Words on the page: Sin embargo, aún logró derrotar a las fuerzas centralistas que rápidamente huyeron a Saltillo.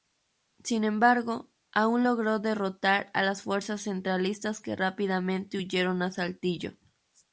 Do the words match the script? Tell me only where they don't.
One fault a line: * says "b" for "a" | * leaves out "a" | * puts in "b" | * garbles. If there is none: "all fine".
all fine